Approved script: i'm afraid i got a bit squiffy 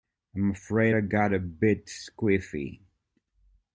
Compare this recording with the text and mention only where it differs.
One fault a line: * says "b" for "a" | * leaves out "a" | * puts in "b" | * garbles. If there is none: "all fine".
all fine